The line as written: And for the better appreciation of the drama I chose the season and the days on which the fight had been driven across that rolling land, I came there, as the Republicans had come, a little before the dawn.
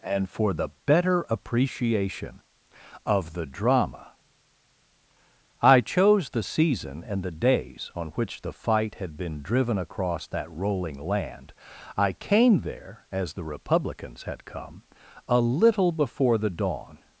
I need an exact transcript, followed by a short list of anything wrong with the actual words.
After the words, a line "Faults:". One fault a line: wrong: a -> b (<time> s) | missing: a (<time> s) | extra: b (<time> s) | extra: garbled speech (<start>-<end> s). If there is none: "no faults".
And for the better appreciation of the drama I chose the season and the days on which the fight had been driven across that rolling land, I came there, as the Republicans had come, a little before the dawn.
Faults:
no faults